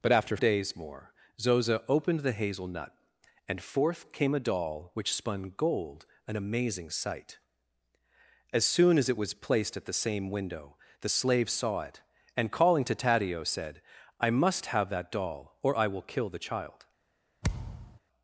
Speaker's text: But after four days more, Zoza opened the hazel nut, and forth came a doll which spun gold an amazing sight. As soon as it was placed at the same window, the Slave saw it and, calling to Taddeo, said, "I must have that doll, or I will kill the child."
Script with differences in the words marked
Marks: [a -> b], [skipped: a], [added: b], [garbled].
But after [skipped: four] days more, Zoza opened the hazel nut, and forth came a doll which spun gold an amazing sight. As soon as it was placed at the same window, the Slave saw it and, calling to Taddeo, said, "I must have that doll, or I will kill the child."